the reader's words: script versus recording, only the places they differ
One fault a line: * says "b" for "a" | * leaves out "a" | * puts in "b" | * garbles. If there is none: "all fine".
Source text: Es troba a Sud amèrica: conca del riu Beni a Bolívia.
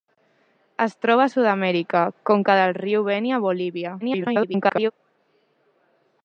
* garbles